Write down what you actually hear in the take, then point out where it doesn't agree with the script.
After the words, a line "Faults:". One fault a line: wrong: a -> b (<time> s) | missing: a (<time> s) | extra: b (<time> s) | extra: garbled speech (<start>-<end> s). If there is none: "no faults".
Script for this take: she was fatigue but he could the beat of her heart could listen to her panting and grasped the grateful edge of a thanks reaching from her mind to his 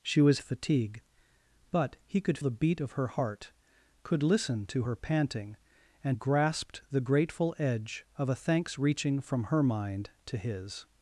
she was fatigue but he could the beat of her heart could listen to her panting and grasped the grateful edge of a thanks reaching from her mind to his
Faults:
no faults